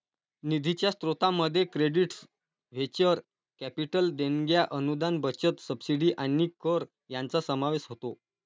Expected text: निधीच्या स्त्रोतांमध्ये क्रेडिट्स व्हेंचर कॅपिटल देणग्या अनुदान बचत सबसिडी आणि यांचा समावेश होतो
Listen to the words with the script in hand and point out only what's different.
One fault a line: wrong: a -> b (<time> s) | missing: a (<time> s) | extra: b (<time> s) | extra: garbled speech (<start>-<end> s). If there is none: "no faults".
extra: कर (6.6 s)